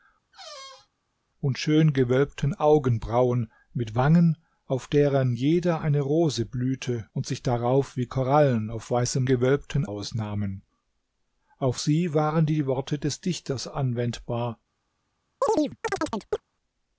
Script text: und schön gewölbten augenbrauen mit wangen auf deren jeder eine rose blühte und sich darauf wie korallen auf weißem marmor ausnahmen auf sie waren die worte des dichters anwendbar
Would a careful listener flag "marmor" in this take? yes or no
yes